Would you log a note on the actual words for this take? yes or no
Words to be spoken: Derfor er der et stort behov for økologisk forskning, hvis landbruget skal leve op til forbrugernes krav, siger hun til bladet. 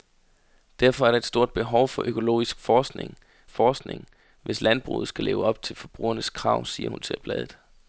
yes